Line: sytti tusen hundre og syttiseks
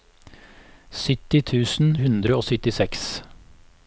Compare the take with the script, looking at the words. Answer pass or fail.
pass